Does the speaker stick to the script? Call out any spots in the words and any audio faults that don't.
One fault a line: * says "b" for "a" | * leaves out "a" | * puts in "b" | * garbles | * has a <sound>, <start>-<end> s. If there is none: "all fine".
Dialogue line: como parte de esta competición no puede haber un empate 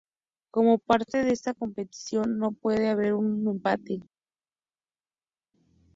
all fine